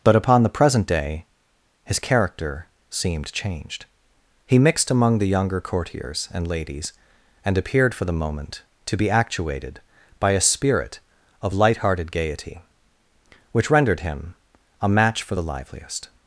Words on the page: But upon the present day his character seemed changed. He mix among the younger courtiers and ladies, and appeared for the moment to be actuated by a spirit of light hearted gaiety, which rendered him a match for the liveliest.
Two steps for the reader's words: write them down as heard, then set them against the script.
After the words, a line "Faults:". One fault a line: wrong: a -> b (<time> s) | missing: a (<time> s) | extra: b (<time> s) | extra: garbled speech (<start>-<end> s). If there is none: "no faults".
But upon the present day his character seemed changed. He mixed among the younger courtiers and ladies, and appeared for the moment to be actuated by a spirit of light hearted gaiety, which rendered him a match for the liveliest.
Faults:
wrong: mix -> mixed (4.6 s)